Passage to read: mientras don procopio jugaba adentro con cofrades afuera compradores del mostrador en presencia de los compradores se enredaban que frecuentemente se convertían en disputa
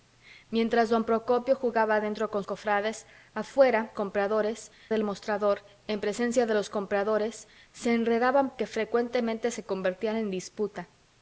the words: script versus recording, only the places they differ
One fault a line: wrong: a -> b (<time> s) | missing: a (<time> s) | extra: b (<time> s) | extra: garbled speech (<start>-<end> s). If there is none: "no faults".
no faults